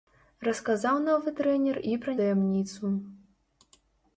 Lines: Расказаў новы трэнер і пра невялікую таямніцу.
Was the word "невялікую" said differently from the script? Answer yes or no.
yes